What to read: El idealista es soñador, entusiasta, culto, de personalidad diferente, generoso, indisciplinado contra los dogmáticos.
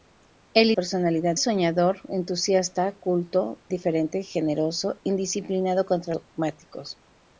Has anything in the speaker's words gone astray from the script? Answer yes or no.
yes